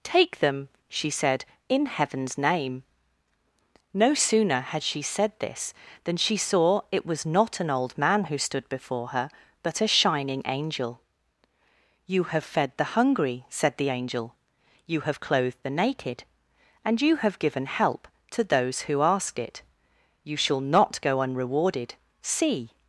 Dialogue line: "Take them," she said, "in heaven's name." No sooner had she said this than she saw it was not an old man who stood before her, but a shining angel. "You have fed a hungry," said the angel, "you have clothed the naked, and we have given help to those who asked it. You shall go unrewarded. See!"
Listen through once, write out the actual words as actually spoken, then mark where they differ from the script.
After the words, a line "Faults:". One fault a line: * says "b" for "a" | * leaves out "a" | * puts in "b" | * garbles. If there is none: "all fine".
"Take them," she said, "in heaven's name." No sooner had she said this than she saw it was not an old man who stood before her, but a shining angel. "You have fed the hungry," said the angel, "you have clothed the naked, and you have given help to those who asked it. You shall not go unrewarded. See!"
Faults:
* says "the" for "a"
* says "you" for "we"
* puts in "not"